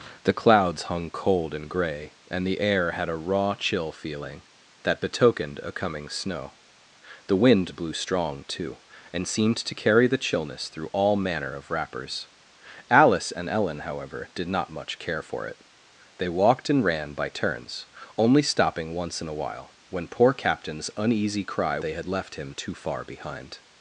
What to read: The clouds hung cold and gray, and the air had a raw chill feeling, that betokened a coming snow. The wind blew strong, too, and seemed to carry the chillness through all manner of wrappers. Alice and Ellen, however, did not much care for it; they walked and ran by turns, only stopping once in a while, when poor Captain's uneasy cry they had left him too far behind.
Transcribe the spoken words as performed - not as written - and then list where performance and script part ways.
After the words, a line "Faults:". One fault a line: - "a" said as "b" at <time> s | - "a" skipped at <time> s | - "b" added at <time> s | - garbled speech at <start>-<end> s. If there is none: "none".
The clouds hung cold and gray, and the air had a raw chill feeling, that betokened a coming snow. The wind blew strong, too, and seemed to carry the chillness through all manner of wrappers. Alice and Ellen, however, did not much care for it; they walked and ran by turns, only stopping once in a while, when poor Captain's uneasy cry they had left him too far behind.
Faults:
none